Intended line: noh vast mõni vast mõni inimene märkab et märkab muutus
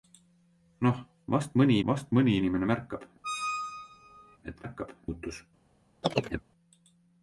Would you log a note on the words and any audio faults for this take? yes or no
yes